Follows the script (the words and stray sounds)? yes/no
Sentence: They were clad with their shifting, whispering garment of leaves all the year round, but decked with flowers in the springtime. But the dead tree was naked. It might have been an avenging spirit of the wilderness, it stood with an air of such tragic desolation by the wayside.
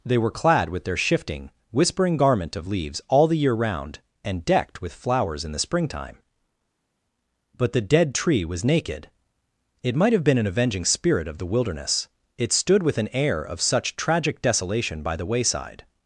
no